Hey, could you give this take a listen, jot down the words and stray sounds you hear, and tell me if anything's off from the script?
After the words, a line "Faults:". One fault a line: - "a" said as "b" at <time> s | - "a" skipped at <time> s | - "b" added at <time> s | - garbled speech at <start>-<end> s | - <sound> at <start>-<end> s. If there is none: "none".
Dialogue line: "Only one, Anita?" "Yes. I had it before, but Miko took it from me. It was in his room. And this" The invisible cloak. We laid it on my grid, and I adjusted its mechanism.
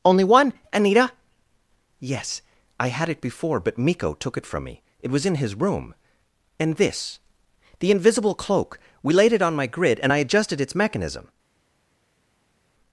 "Only one, Anita?" "Yes. I had it before, but Miko took it from me. It was in his room. And this" The invisible cloak. We laid it on my grid, and I adjusted its mechanism.
Faults:
none